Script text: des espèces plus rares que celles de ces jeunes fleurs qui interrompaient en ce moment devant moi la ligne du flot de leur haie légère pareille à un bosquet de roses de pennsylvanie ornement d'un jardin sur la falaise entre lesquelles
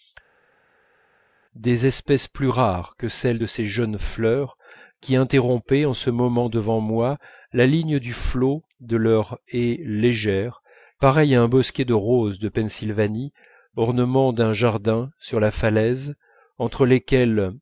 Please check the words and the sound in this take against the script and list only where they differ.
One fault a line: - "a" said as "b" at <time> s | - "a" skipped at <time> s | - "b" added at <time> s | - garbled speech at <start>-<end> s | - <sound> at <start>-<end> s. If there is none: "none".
none